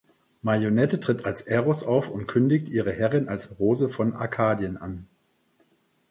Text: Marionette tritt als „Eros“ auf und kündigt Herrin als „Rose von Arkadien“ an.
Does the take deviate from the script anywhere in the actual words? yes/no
yes